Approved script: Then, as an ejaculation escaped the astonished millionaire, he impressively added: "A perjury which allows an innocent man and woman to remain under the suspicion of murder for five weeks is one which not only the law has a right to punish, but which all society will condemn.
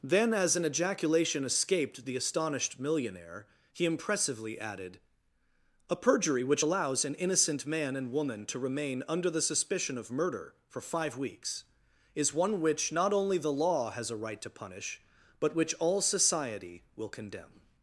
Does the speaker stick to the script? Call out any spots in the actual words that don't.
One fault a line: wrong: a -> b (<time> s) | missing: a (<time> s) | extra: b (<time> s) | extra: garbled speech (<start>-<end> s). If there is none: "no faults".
no faults